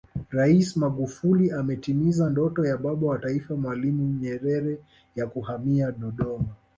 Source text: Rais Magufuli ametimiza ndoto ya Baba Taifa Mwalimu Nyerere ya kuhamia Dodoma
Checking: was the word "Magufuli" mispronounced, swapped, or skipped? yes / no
no